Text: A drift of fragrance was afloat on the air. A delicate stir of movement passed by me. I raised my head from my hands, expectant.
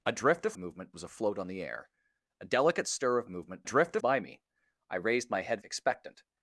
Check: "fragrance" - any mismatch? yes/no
yes